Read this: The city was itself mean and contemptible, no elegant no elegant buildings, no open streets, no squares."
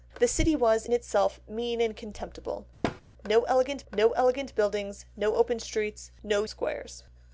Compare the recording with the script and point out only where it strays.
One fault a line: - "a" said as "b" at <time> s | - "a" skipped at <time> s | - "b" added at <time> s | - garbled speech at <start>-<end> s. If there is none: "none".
none